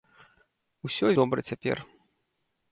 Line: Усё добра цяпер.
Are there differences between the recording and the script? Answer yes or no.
no